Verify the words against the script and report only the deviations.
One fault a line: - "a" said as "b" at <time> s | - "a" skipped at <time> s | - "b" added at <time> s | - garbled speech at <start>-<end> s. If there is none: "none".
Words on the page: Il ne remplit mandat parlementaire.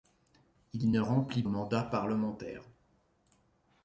none